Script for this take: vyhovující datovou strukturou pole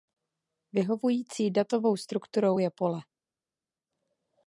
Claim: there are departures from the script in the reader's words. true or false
true